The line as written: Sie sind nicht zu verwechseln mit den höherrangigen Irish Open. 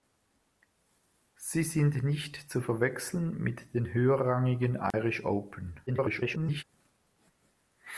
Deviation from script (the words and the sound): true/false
true